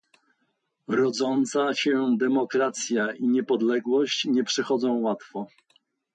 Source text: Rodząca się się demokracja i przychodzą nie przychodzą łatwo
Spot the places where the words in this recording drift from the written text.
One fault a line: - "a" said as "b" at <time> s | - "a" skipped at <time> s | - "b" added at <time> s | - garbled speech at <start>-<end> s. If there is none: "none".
- "się" skipped at 2.1 s
- "przychodzą" said as "niepodległość" at 3.3 s